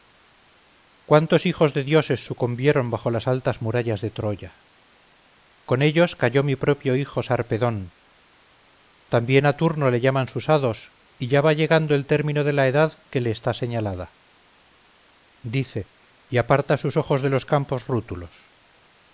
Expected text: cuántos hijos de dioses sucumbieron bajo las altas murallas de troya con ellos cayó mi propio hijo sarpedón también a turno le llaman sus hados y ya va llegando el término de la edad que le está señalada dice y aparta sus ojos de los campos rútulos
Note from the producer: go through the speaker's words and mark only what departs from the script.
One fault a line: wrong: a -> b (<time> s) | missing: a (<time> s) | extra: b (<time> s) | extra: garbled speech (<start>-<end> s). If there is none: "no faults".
no faults